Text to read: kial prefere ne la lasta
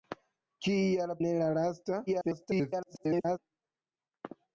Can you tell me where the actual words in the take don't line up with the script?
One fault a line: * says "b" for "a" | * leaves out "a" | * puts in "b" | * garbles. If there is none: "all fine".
* leaves out "prefere"
* garbles